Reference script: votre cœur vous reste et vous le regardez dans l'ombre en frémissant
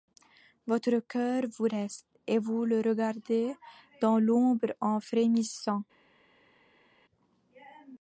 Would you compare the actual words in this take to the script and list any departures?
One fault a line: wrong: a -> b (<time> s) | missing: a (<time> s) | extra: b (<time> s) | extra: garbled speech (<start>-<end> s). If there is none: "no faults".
no faults